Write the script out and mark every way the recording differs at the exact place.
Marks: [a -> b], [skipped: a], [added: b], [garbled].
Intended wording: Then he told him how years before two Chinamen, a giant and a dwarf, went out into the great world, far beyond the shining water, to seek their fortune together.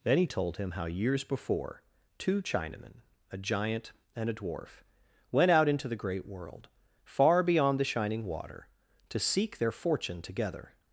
Then he told him how years before two Chinamen, a giant and a dwarf, went out into the great world, far beyond the shining water, to seek their fortune together.